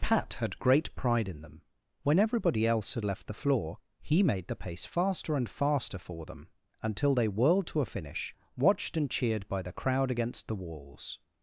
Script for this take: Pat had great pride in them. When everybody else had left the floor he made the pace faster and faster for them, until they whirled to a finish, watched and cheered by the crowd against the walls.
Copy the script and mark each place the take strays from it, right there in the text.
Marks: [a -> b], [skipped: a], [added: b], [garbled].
Pat had great pride in them. When everybody else had left the floor he made the pace faster and faster for them, until they whirled to a finish, watched and cheered by the crowd against the walls.